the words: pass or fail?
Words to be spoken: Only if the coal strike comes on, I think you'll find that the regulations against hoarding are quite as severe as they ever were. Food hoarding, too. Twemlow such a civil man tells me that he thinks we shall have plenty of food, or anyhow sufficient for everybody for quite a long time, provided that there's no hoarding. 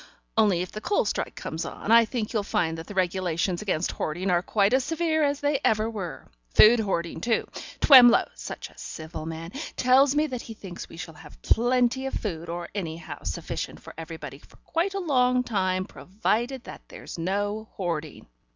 pass